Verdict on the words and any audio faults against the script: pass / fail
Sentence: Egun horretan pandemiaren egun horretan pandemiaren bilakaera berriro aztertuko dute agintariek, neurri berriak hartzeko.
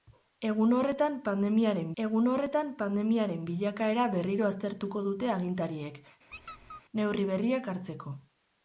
fail